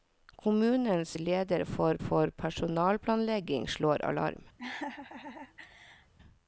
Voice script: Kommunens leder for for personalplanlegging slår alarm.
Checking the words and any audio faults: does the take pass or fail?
fail